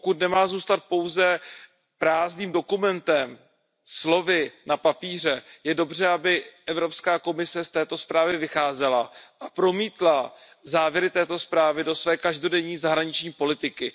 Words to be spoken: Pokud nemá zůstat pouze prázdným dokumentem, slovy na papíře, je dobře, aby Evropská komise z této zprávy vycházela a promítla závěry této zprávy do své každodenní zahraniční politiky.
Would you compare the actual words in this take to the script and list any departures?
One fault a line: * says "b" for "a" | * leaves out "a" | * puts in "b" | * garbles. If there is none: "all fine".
all fine